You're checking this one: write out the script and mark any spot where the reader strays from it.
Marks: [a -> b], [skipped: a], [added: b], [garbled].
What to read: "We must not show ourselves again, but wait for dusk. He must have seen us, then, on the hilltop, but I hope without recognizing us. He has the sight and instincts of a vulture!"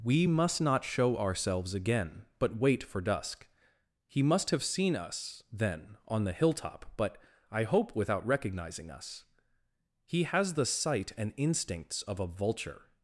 "We must not show ourselves again, but wait for dusk. He must have seen us, then, on the hilltop, but I hope without recognizing us. He has the sight and instincts of a vulture!"